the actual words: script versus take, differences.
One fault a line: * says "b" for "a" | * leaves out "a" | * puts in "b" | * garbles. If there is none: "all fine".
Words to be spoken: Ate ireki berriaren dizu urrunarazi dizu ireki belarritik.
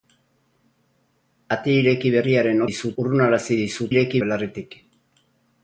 all fine